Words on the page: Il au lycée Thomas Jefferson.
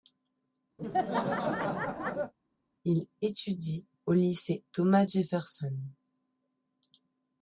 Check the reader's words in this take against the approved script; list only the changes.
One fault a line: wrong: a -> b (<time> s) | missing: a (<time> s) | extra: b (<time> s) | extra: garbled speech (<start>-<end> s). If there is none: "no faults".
extra: étudie (3.2 s)